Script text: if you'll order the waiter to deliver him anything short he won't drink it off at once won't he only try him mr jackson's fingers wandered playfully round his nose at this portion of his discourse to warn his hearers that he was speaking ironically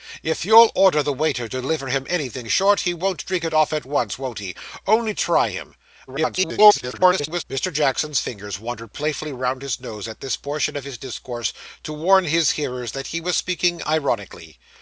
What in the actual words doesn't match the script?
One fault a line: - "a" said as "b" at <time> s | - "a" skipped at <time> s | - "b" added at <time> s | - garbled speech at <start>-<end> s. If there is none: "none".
- garbled speech at 6.1-7.4 s